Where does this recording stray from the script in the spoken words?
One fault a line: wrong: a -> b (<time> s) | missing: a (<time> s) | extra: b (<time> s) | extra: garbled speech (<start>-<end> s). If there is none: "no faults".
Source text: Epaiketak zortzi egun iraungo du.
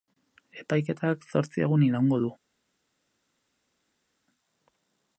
no faults